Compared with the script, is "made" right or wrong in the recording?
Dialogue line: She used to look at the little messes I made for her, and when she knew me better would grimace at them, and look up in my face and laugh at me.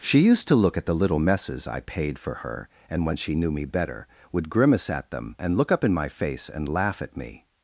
wrong